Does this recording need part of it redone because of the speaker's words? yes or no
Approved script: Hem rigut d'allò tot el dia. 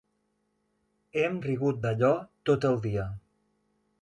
no